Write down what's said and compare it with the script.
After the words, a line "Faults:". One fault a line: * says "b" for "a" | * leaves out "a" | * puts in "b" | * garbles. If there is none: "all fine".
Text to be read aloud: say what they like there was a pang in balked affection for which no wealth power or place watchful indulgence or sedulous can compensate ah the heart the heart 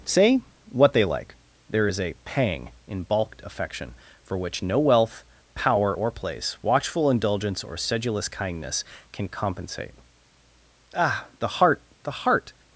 say what they like there is a pang in balked affection for which no wealth power or place watchful indulgence or sedulous kindness can compensate ah the heart the heart
Faults:
* says "is" for "was"
* puts in "kindness"